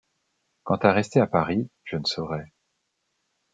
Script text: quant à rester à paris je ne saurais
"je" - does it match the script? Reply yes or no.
yes